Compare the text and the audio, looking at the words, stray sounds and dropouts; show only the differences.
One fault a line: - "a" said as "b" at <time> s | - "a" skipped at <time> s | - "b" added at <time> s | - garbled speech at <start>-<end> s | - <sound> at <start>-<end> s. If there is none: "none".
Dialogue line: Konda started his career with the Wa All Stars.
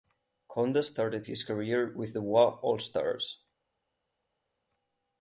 none